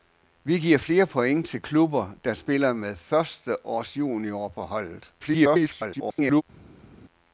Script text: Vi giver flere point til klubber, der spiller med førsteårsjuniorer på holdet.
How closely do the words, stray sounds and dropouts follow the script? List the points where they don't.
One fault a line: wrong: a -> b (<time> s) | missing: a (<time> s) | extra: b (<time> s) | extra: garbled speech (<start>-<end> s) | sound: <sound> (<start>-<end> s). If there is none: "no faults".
extra: garbled speech (5.2-6.4 s)